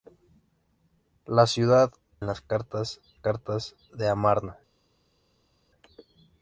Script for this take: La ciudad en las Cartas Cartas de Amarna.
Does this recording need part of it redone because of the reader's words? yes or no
no